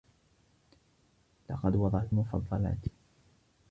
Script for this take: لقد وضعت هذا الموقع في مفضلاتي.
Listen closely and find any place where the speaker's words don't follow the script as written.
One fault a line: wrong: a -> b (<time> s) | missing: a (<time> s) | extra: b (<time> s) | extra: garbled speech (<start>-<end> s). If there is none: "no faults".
missing: هذا الموقع في (2.1 s)